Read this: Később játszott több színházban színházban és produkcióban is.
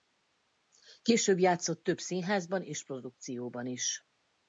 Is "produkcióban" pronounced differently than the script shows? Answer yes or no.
no